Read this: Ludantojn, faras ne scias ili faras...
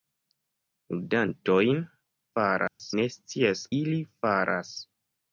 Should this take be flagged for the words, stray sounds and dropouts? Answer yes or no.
yes